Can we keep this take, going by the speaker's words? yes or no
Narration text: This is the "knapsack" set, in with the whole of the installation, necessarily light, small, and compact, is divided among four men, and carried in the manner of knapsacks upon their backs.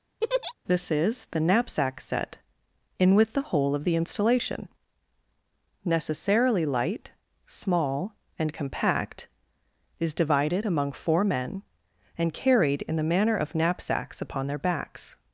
yes